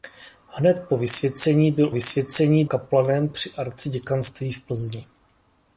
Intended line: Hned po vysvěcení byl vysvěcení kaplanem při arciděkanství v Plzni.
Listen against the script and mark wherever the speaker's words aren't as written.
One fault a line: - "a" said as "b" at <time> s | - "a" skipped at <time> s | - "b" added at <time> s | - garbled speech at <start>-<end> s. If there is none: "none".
none